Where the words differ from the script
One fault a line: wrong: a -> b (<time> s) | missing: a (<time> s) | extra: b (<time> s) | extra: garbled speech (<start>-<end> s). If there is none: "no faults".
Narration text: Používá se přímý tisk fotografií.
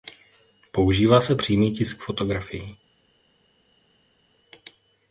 no faults